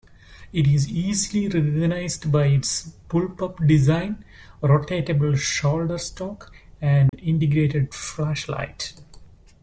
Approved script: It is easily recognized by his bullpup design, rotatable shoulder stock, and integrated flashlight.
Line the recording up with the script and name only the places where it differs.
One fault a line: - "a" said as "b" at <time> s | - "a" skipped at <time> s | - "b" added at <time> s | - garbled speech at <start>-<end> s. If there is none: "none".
- "his" said as "its" at 2.5 s